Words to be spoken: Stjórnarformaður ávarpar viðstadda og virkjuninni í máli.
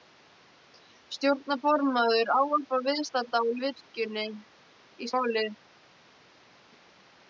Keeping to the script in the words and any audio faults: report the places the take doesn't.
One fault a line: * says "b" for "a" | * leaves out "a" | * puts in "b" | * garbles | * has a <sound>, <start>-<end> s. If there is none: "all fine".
all fine